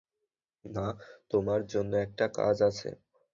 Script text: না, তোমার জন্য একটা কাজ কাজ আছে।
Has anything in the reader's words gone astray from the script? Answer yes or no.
yes